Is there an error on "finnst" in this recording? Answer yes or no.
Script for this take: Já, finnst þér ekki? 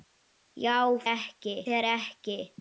yes